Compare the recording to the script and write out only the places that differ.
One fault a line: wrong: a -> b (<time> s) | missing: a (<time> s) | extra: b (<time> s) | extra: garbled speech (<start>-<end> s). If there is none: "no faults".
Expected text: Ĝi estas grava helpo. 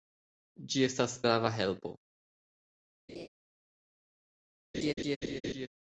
no faults